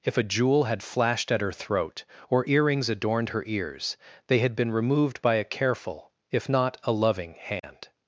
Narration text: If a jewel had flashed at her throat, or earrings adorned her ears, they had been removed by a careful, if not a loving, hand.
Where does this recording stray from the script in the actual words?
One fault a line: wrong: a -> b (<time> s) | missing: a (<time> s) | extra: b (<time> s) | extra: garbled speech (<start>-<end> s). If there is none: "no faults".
no faults